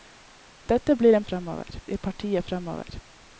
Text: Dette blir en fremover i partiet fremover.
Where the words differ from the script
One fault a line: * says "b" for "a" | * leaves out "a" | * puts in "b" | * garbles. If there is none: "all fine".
all fine